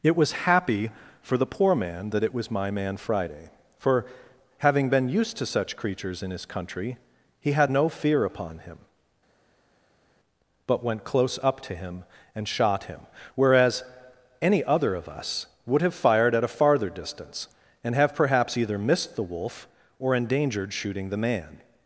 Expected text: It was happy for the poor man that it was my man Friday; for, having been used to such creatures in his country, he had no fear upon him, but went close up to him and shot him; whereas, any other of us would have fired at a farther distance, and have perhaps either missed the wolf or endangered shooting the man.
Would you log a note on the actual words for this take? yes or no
no